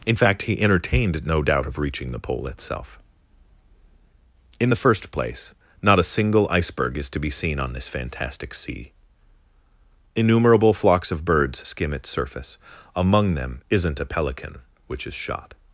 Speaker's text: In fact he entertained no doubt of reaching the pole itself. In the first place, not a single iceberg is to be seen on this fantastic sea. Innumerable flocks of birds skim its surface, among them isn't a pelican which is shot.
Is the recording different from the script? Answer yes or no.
no